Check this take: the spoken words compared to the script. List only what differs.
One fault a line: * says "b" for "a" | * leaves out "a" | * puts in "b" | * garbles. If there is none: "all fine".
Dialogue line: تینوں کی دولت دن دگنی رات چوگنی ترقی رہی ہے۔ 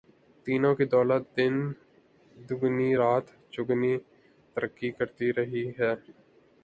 * puts in "کرتی"